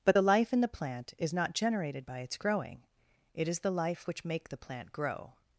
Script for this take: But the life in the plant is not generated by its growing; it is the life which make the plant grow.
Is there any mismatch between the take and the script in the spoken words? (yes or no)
no